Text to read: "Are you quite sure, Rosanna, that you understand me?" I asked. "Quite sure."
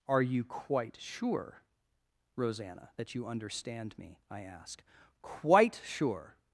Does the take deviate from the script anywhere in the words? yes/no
yes